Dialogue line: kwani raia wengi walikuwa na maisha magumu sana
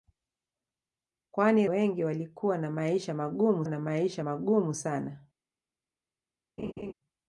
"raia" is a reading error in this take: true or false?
true